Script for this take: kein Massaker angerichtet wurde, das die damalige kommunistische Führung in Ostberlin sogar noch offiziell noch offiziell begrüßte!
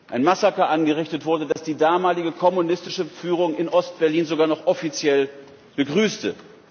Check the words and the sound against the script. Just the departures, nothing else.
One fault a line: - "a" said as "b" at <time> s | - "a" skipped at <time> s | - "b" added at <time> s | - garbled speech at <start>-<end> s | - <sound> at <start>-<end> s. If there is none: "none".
- "kein" said as "ein" at 0.1 s
- dropout at 1.5-1.6 s
- "noch offiziell" skipped at 5.3 s